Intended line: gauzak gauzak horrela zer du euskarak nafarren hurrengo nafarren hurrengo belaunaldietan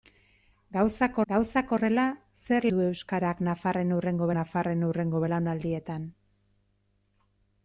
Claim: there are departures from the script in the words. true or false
false